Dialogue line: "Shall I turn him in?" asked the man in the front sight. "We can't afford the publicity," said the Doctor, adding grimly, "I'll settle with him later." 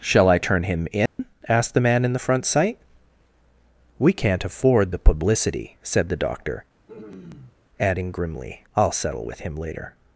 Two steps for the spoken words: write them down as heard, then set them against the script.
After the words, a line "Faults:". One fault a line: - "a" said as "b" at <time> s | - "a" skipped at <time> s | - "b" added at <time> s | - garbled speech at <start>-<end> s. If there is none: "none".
"Shall I turn him in?" asked the man in the front sight. "We can't afford the publicity," said the Doctor, adding grimly, "I'll settle with him later."
Faults:
none